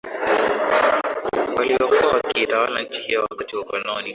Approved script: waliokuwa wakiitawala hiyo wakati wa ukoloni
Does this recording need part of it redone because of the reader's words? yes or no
yes